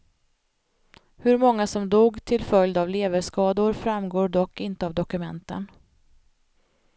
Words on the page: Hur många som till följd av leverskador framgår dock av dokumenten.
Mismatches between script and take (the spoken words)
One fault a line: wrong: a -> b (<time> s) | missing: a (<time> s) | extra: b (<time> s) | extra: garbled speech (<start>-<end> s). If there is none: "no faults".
extra: dog (1.9 s)
extra: inte (4.6 s)